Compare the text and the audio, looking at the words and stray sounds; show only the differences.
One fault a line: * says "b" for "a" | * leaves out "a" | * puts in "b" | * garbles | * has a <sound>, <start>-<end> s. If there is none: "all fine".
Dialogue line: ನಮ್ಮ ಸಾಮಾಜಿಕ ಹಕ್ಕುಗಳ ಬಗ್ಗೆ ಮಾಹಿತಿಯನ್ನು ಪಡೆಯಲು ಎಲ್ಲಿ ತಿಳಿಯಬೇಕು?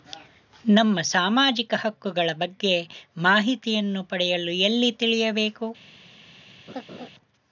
* has a laugh, 6.7-7.1 s